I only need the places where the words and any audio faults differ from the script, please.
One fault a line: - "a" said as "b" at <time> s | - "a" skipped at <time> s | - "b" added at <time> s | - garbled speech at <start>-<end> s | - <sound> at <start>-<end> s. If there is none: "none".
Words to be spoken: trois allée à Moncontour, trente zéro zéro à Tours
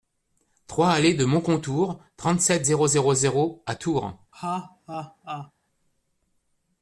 - "à" said as "de" at 1.1 s
- "sept zéro" added at 2.4 s
- laugh at 4.3-5.5 s